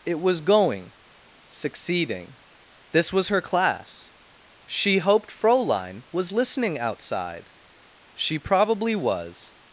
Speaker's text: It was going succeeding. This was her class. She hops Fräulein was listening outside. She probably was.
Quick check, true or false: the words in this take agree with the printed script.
false